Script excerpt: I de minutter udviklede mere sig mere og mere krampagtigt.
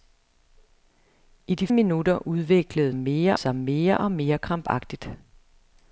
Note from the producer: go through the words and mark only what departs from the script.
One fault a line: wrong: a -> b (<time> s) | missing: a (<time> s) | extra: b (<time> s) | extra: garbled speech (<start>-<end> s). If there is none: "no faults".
no faults